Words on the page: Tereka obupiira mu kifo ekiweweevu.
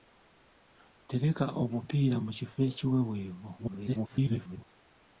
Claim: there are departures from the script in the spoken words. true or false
true